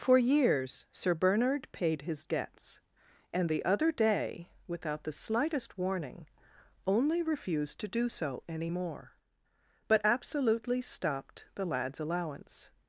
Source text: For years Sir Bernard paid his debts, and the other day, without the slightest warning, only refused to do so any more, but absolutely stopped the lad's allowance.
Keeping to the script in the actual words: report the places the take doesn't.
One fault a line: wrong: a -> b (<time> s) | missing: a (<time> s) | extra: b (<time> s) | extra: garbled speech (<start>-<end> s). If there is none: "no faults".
no faults